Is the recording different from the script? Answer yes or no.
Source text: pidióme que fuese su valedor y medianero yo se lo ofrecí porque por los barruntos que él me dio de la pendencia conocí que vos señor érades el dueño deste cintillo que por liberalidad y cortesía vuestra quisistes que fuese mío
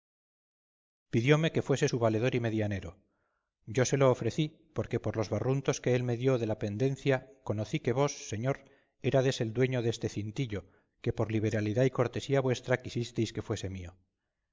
no